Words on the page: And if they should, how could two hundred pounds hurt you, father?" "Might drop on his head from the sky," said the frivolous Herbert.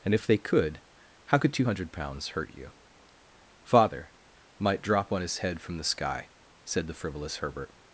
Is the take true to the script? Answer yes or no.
no